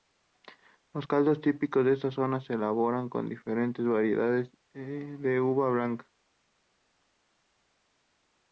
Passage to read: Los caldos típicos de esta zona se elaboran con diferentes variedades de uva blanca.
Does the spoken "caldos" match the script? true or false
true